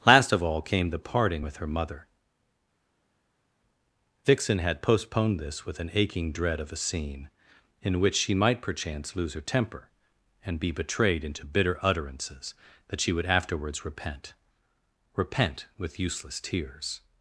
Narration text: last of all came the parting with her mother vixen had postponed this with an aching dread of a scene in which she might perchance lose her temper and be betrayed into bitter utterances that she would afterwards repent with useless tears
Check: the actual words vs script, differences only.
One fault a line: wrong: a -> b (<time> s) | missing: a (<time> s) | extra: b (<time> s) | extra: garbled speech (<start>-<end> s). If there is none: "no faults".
extra: repent (15.1 s)